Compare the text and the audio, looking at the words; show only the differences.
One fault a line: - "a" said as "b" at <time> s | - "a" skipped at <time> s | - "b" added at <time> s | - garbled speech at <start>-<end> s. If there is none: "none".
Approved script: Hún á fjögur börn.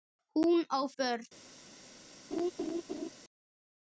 - "fjögur" skipped at 0.8 s